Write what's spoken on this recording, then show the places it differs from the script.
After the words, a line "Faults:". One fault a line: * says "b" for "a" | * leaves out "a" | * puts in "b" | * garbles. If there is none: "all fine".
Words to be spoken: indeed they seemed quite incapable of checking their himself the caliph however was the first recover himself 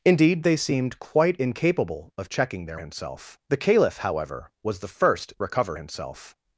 indeed they seemed quite incapable of checking their himself the caliph however was the first recover himself
Faults:
all fine